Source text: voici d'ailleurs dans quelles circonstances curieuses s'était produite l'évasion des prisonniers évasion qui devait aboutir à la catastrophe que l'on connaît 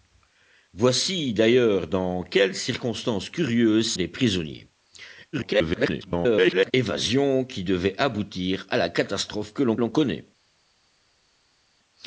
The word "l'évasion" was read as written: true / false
false